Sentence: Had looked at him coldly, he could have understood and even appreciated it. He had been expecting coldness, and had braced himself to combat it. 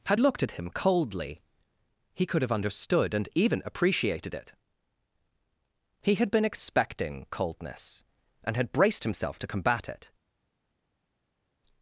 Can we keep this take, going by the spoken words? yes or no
yes